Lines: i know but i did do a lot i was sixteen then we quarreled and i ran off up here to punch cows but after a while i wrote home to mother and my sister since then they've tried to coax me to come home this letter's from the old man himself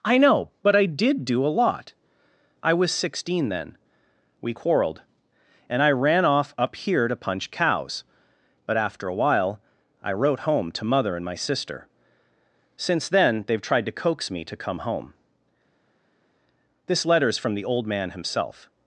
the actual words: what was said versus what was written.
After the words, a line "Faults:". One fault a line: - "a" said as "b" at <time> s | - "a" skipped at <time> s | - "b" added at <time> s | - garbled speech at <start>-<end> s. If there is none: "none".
i know but i did do a lot i was sixteen then we quarreled and i ran off up here to punch cows but after a while i wrote home to mother and my sister since then they've tried to coax me to come home this letter's from the old man himself
Faults:
none